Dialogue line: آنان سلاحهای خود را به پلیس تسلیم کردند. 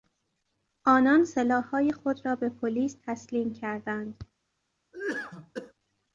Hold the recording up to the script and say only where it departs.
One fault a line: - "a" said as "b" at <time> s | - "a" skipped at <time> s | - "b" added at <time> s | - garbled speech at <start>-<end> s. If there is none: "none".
none